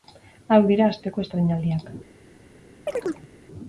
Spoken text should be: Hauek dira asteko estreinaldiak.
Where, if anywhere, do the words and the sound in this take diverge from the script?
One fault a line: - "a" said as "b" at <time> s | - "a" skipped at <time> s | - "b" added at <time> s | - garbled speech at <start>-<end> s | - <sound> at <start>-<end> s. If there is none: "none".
- chirp at 2.9-3.3 s